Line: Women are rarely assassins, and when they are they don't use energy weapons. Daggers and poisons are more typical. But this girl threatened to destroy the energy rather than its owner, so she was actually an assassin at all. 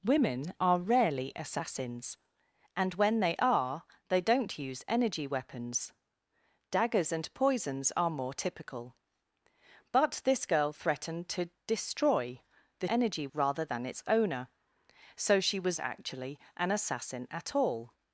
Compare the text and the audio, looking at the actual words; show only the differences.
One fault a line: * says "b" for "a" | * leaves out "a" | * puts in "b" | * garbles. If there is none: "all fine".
all fine